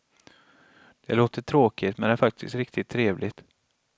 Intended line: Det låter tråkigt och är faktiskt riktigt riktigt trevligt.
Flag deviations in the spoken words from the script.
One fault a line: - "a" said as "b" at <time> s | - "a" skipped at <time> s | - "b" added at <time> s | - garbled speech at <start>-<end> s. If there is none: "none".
- "och" said as "men" at 2.0 s
- "riktigt" skipped at 2.9 s